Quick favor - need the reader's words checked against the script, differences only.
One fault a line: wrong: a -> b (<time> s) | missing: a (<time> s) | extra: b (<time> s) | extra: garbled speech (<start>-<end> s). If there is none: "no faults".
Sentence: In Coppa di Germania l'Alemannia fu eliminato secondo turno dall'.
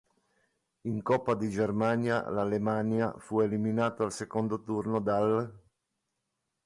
extra: al (4.0 s)